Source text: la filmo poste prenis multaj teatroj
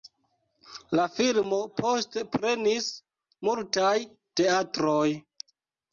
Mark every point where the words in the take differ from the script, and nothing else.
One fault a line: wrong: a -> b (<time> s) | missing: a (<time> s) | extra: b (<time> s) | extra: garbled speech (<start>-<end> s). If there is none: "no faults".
no faults